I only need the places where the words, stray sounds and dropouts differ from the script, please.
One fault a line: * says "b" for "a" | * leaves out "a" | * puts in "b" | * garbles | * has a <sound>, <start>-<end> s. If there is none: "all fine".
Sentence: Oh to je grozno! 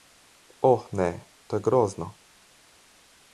* puts in "ne"